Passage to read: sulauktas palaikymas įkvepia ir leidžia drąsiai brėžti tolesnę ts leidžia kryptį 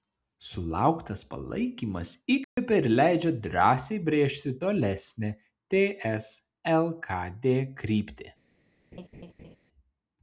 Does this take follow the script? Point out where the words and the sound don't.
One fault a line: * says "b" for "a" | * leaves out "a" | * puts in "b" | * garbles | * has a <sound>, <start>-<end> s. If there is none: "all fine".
* has a dropout, 2.4-2.6 s
* says "lkd" for "leidžia"
* has a laugh, 8.9-9.6 s